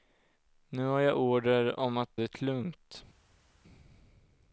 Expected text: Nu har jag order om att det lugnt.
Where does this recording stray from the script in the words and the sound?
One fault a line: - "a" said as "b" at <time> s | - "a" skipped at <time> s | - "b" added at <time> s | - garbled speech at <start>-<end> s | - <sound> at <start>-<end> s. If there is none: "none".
none